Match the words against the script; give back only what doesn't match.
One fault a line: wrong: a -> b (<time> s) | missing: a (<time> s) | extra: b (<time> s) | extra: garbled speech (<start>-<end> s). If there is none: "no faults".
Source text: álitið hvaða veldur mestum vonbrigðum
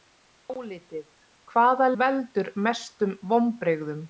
no faults